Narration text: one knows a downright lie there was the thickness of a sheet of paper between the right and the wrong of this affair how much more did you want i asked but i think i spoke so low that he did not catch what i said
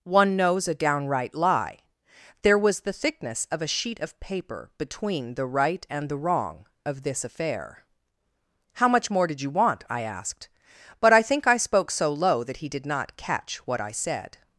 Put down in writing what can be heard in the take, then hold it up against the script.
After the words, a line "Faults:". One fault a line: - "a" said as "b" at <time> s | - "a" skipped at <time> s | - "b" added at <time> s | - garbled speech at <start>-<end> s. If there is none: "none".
one knows a downright lie there was the thickness of a sheet of paper between the right and the wrong of this affair how much more did you want i asked but i think i spoke so low that he did not catch what i said
Faults:
none